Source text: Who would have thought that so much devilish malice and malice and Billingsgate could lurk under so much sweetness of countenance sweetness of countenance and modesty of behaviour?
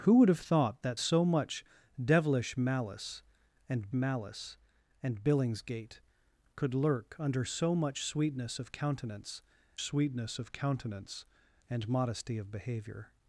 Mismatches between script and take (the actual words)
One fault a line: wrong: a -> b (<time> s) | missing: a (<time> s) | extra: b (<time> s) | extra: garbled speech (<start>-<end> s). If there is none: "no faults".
no faults